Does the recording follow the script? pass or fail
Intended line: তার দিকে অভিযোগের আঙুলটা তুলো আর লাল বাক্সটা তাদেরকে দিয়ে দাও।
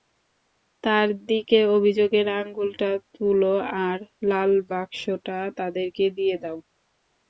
pass